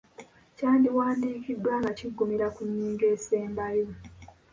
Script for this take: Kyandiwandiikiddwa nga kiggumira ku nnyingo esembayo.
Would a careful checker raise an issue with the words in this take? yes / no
no